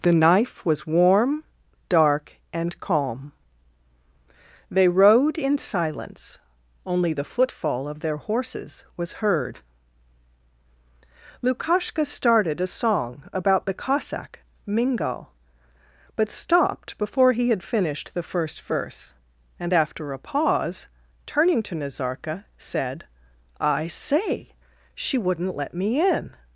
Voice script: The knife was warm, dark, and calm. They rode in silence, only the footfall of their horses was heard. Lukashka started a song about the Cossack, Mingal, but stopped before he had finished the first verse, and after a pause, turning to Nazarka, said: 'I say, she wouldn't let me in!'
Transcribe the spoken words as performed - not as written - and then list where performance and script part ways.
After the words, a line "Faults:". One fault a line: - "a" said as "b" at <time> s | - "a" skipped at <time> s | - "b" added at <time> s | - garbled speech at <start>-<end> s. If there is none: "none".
The knife was warm, dark, and calm. They rode in silence, only the footfall of their horses was heard. Lukashka started a song about the Cossack, Mingal, but stopped before he had finished the first verse, and after a pause, turning to Nazarka, said: 'I say, she wouldn't let me in!'
Faults:
none